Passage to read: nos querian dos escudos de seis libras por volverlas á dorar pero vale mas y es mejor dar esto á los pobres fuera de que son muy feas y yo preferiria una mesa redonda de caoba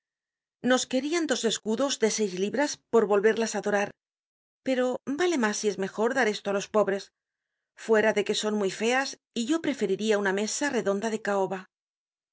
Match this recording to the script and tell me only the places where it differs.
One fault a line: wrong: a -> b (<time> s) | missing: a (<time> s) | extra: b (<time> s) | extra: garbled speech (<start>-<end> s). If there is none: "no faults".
no faults